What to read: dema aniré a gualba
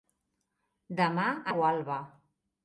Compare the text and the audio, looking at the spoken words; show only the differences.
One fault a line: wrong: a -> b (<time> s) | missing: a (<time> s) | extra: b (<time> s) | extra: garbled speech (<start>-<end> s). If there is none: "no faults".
missing: aniré (1.3 s)